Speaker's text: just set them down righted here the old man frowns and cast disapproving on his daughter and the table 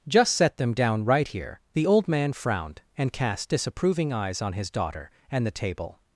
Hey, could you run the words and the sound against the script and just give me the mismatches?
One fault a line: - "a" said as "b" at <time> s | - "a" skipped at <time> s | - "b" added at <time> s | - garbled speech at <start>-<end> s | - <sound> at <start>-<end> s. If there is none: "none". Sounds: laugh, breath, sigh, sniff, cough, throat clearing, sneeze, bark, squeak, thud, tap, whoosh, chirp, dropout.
- "righted" said as "right" at 1.1 s
- "frowns" said as "frowned" at 2.3 s
- "eyes" added at 4.1 s